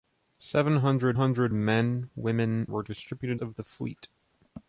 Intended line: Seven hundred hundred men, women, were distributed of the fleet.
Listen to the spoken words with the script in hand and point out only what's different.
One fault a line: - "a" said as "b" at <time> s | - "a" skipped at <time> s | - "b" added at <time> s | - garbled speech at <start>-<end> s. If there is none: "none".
none